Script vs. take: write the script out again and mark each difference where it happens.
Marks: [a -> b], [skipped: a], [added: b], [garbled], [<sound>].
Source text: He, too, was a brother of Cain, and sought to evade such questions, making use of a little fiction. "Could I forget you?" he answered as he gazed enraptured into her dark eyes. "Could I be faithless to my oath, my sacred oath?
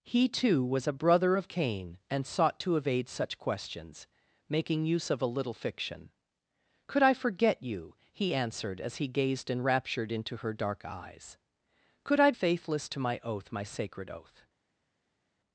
He, too, was a brother of Cain, and sought to evade such questions, making use of a little fiction. "Could I forget you?" he answered as he gazed enraptured into her dark eyes. "Could I [skipped: be] faithless to my oath, my sacred oath?